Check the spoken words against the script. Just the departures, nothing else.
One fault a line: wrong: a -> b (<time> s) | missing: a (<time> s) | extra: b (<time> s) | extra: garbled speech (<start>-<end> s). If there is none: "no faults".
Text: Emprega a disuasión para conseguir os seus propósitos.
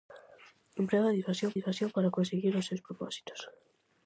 extra: disuasión (1.6 s)